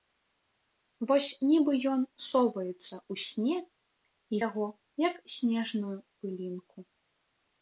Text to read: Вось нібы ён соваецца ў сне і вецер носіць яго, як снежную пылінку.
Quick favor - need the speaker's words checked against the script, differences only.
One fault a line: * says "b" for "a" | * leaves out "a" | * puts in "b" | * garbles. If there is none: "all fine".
* leaves out "вецер носіць"